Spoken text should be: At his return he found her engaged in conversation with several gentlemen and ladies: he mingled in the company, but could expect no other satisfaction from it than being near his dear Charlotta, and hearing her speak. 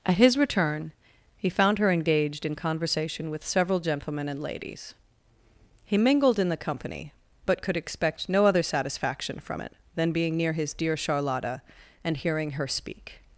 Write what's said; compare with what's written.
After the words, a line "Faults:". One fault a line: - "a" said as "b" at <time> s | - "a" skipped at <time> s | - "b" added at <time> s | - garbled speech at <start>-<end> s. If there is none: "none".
At his return he found her engaged in conversation with several gentlemen and ladies: he mingled in the company, but could expect no other satisfaction from it than being near his dear Charlotta, and hearing her speak.
Faults:
none